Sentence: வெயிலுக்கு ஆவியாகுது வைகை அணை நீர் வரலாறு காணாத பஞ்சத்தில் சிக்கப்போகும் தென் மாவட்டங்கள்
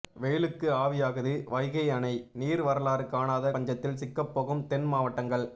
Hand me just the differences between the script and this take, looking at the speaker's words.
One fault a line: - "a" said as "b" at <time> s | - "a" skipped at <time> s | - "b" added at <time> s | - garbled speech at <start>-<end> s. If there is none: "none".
none